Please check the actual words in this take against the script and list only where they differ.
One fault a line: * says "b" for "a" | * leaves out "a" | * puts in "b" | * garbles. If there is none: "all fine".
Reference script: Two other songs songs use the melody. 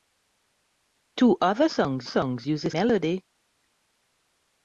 all fine